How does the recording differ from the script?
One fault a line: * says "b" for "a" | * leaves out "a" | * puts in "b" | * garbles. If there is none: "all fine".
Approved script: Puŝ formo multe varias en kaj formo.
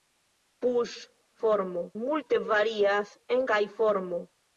all fine